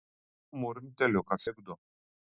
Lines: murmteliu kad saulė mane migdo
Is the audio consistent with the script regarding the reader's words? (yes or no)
no